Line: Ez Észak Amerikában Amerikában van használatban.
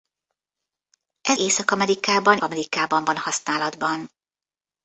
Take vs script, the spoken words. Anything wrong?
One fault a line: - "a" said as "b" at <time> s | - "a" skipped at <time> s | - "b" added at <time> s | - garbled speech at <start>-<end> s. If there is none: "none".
none